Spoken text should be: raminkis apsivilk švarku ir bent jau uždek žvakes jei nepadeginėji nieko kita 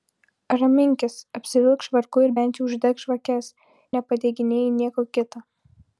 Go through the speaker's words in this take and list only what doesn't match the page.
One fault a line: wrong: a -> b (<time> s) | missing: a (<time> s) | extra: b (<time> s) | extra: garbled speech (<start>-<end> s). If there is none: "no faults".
missing: jei (3.5 s)